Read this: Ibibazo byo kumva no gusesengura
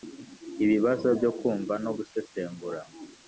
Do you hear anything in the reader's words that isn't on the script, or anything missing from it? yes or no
no